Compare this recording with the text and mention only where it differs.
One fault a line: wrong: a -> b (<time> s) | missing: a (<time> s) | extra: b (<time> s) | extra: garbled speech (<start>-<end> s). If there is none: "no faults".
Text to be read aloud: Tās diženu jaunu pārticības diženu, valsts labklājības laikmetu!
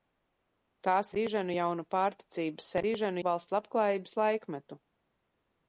no faults